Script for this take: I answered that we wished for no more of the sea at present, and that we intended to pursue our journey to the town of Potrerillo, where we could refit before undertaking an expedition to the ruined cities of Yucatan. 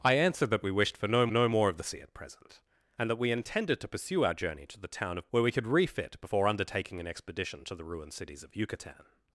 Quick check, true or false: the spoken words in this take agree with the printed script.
false